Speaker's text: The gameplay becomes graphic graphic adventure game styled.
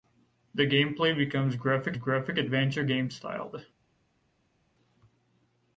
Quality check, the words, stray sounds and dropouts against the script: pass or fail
pass